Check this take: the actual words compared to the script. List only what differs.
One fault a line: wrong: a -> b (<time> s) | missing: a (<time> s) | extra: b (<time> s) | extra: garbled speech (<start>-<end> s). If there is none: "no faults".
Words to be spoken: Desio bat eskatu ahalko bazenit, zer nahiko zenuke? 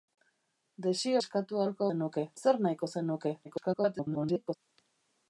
missing: bat (1.2 s)
wrong: bazenit -> zenuke (1.9 s)
extra: garbled speech (3.4-4.6 s)